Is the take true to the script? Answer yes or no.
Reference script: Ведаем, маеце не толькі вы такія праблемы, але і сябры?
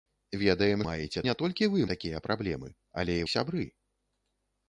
yes